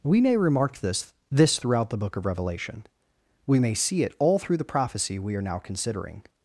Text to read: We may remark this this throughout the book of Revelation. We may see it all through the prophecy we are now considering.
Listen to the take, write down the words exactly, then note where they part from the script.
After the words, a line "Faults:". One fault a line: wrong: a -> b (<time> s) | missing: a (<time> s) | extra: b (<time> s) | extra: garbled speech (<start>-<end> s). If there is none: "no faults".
We may remark this this throughout the book of Revelation. We may see it all through the prophecy we are now considering.
Faults:
no faults